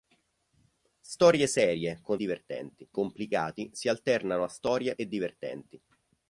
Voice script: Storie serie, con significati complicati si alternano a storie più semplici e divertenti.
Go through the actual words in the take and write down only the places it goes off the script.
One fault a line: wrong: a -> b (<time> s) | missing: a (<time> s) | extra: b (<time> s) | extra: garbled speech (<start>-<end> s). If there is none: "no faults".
wrong: significati -> divertenti (2.1 s)
missing: più semplici (4.9 s)